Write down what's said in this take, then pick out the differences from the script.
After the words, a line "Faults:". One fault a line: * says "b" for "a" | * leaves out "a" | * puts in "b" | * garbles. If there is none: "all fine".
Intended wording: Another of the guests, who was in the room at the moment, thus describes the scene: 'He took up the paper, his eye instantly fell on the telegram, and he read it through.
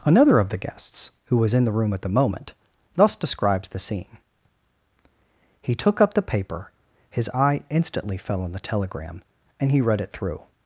Another of the guests, who was in the room at the moment, thus describes the scene: 'He took up the paper, his eye instantly fell on the telegram, and he read it through.
Faults:
all fine